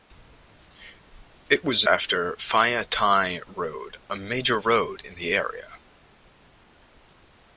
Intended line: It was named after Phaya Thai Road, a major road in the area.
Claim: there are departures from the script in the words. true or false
true